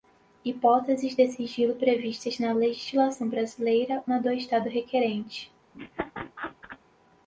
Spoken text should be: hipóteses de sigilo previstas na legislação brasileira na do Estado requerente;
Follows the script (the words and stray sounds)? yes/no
no